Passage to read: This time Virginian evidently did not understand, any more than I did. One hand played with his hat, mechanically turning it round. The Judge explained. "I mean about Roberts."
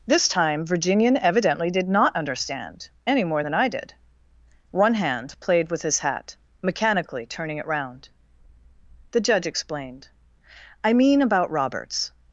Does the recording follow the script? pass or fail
pass